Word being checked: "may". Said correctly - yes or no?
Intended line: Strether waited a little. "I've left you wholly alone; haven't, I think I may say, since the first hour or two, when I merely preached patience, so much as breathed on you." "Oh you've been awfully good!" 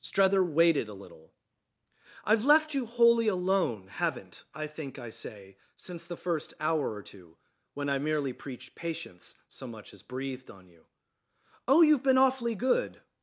no